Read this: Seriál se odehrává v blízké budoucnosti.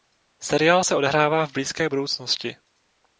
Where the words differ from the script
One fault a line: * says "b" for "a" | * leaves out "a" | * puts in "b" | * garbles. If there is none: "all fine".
all fine